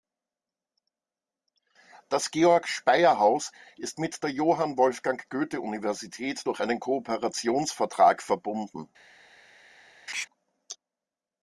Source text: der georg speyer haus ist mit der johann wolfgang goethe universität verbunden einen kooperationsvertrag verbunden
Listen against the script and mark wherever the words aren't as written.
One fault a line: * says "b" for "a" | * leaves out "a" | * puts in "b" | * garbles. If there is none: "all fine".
* says "das" for "der"
* says "durch" for "verbunden"